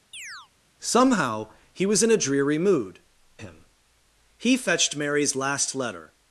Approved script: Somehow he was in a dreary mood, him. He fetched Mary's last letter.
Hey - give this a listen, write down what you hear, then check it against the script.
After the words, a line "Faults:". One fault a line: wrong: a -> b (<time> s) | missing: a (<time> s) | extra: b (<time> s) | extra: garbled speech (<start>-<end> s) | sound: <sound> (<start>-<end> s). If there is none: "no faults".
Somehow he was in a dreary mood, him. He fetched Mary's last letter.
Faults:
sound: chirp (0.1-0.5 s)